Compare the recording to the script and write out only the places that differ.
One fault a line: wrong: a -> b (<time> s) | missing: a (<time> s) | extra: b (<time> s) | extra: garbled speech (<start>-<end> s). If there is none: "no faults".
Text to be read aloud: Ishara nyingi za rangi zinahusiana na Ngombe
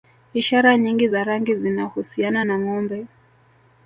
no faults